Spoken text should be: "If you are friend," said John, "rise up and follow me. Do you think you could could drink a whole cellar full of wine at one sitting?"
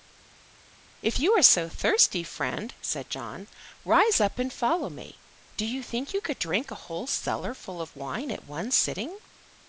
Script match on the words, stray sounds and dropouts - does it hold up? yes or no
no